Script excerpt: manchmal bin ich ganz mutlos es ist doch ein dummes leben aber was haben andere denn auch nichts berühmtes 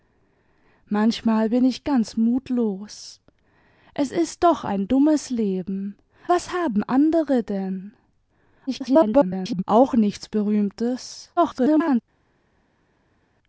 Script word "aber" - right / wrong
wrong